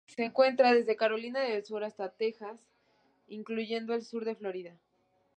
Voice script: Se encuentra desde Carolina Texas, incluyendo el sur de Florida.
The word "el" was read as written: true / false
true